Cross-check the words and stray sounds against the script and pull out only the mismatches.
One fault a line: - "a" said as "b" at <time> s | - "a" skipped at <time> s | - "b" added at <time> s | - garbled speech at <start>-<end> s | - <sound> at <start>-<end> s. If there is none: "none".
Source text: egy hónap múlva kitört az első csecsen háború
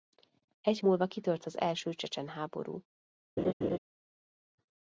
- "hónap" skipped at 0.8 s
- laugh at 3.4-3.8 s